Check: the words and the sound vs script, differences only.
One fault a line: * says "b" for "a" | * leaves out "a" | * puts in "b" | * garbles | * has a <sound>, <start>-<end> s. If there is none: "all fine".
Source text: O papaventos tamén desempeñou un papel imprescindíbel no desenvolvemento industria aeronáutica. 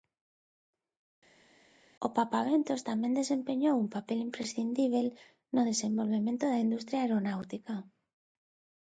* puts in "da"